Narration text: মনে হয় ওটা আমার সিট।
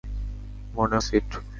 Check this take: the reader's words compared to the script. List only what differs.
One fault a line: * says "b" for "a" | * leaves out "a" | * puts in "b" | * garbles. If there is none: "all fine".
* leaves out "হয় ওটা আমার"